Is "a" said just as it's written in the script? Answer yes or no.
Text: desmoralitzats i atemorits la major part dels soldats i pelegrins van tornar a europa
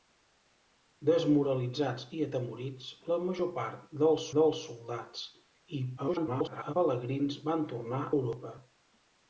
no